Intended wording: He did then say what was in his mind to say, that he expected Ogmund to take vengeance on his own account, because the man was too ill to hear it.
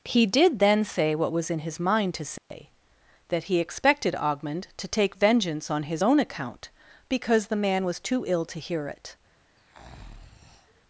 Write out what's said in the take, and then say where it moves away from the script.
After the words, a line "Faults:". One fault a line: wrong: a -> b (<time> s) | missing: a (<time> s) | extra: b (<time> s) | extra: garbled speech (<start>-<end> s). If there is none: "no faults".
He did then say what was in his mind to say, that he expected Ogmund to take vengeance on his own account, because the man was too ill to hear it.
Faults:
no faults